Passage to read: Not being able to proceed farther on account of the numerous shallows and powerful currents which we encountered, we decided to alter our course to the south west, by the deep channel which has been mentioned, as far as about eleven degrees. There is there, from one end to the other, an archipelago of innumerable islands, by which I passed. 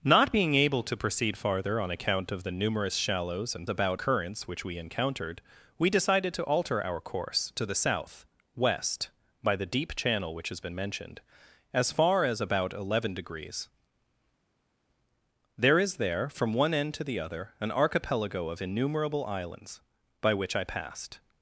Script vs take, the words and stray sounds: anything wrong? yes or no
yes